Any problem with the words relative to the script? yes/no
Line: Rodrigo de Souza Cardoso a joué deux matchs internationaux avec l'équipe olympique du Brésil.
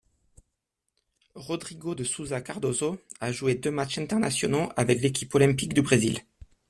no